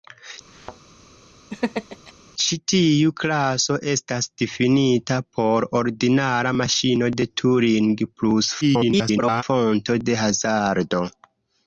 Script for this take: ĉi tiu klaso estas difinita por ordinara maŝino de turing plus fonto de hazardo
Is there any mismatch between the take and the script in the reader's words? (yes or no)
yes